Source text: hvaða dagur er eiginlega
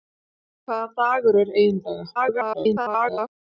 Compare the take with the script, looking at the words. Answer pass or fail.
fail